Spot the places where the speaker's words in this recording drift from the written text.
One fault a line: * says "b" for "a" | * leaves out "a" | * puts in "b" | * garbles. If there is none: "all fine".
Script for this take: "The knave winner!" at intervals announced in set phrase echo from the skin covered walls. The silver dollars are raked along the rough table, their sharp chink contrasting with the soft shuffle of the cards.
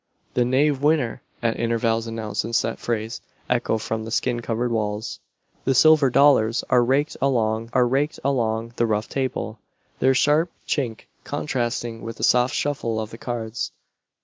* puts in "are raked along"